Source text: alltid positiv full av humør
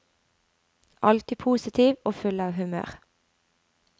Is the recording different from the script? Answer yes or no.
yes